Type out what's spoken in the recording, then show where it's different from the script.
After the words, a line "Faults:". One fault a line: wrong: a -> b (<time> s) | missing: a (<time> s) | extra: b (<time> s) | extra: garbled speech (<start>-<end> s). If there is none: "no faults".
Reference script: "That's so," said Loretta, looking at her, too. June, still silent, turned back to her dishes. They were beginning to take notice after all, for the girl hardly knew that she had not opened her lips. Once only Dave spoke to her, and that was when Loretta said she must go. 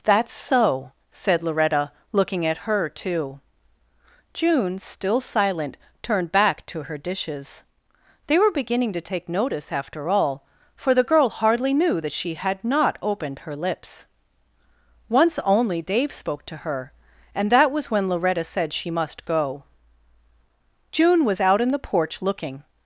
"That's so," said Loretta, looking at her, too. June, still silent, turned back to her dishes. They were beginning to take notice after all, for the girl hardly knew that she had not opened her lips. Once only Dave spoke to her, and that was when Loretta said she must go. June was out in the porch looking
Faults:
extra: June was out in the porch looking (20.9 s)